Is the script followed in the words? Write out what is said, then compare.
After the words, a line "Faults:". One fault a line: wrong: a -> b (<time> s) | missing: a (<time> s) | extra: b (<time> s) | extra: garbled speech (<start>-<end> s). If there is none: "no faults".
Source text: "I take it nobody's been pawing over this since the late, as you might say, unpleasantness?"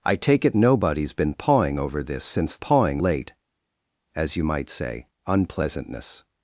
"I take it nobody's been pawing over this since pawing late, as you might say, unpleasantness?"
Faults:
wrong: the -> pawing (2.6 s)